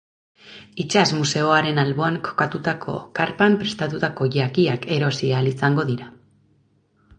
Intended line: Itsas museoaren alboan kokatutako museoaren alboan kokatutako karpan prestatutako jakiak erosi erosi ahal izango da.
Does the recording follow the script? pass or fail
fail